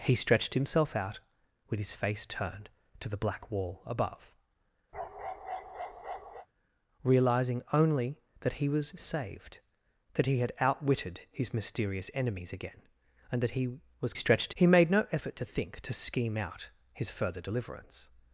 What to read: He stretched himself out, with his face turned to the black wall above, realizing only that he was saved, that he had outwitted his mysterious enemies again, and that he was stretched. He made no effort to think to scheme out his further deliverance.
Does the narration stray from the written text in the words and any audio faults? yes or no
yes